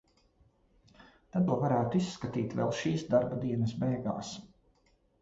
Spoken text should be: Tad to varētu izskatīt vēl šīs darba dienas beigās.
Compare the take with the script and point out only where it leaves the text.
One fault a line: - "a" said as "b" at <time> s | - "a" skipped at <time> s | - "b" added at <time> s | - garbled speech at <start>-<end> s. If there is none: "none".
none